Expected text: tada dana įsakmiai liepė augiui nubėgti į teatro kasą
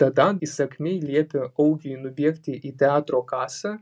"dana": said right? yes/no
no